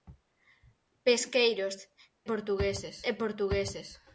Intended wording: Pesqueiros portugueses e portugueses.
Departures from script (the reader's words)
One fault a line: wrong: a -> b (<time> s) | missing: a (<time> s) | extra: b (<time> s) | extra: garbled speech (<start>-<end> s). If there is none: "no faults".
no faults